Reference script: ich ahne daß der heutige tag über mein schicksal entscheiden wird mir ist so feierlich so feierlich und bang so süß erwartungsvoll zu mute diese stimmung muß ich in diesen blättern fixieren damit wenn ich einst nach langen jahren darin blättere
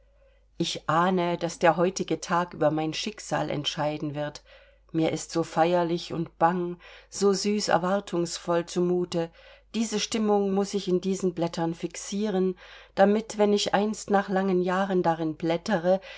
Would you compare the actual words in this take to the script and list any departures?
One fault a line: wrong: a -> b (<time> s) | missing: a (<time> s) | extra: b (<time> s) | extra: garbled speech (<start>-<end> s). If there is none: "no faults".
missing: so feierlich (6.1 s)